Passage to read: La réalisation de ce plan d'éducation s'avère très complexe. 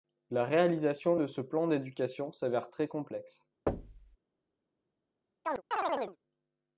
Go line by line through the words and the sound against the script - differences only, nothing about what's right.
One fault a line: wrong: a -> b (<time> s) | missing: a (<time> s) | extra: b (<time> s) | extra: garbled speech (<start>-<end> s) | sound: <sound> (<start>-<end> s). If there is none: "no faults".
sound: thud (3.7-4.2 s)
sound: chirp (5.4-6.2 s)